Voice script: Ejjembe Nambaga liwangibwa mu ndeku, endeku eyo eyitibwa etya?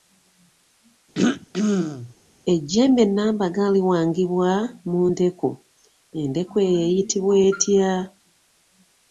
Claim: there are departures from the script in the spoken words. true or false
false